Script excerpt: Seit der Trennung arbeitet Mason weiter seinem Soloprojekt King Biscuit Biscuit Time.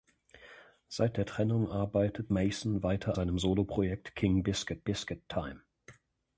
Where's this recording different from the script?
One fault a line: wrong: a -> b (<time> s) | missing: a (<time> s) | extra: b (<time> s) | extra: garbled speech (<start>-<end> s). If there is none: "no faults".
no faults